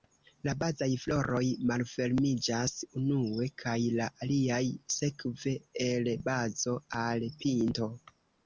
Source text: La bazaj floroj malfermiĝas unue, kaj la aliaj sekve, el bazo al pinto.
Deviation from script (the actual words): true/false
false